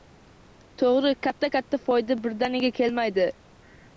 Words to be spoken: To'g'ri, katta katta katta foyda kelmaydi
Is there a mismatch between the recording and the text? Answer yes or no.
yes